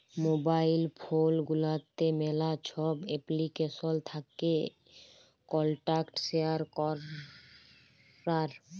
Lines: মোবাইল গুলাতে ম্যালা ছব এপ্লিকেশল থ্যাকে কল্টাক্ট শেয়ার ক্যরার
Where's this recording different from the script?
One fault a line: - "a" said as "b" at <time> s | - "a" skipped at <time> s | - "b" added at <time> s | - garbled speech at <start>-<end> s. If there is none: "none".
- "ফোল" added at 1.0 s